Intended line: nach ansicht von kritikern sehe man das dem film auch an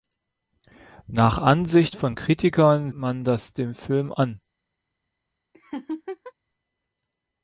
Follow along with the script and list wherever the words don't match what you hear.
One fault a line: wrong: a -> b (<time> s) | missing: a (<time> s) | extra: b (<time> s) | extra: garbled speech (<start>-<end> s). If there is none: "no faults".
missing: sehe (2.9 s)
missing: auch (4.1 s)